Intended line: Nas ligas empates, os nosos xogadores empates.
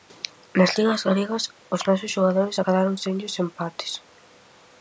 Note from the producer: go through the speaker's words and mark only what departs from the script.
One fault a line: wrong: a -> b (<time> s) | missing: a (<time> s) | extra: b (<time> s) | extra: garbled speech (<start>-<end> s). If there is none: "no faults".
wrong: empates -> galegas (1.1 s)
extra: acadaron senllos (2.6 s)